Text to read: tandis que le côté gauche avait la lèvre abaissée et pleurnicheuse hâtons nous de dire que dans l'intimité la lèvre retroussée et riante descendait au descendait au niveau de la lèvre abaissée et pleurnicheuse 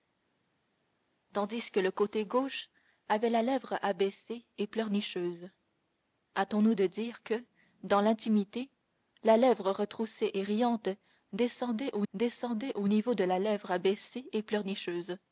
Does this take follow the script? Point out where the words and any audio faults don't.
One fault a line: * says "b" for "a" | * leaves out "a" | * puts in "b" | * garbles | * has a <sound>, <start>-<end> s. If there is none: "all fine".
all fine